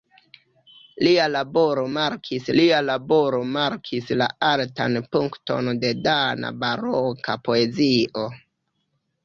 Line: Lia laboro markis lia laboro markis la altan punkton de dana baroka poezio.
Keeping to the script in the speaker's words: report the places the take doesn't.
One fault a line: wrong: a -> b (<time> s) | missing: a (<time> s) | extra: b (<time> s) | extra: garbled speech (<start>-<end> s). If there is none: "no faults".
no faults